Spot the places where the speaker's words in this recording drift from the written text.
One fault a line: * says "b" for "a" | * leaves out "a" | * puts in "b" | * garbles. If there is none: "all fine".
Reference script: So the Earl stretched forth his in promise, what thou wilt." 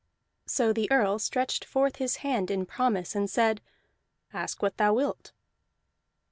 * puts in "hand"
* puts in "and said Ask"